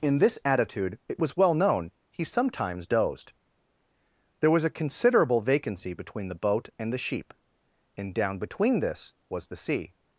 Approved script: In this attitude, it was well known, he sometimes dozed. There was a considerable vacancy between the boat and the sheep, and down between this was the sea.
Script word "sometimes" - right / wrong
right